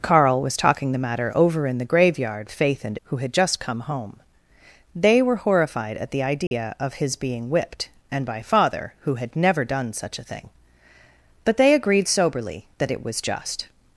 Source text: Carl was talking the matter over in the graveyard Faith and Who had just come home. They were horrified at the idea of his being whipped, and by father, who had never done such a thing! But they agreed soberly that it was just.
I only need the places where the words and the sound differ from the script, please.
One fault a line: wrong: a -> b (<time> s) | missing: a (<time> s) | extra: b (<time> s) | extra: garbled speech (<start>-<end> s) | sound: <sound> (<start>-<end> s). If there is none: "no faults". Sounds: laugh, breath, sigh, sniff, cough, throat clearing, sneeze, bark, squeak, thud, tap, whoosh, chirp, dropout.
sound: dropout (6.5-6.5 s)